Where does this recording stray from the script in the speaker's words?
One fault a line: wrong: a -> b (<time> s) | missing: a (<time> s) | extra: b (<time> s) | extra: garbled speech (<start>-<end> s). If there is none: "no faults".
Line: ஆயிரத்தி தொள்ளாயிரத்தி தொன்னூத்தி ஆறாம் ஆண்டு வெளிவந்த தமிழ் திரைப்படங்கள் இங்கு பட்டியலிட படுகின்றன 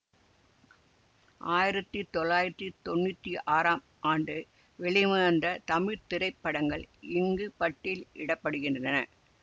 no faults